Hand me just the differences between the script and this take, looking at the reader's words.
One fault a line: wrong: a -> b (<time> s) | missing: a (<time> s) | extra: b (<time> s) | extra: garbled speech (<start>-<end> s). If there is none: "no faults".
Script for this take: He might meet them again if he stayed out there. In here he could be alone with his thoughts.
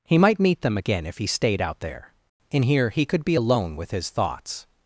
no faults